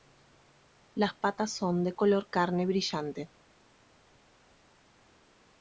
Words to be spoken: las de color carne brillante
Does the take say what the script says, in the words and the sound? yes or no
no